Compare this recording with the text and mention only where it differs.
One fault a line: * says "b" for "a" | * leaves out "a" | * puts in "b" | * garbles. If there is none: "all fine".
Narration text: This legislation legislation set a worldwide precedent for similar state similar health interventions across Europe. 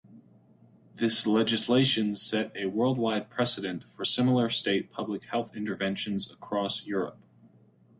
* leaves out "legislation"
* says "public" for "similar"